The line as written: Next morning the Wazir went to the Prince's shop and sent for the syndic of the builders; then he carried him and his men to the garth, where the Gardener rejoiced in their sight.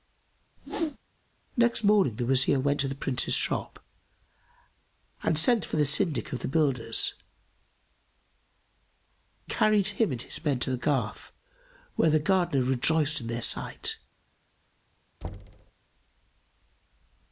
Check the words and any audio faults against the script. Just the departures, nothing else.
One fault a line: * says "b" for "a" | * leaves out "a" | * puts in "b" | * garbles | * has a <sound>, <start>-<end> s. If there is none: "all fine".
* has a whoosh, 0.6-1.0 s
* leaves out "then he"
* has a thud, 15.2-15.7 s